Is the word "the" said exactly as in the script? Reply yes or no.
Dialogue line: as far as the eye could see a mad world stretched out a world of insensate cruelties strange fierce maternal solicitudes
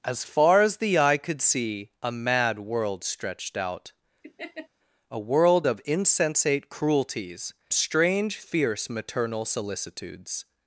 yes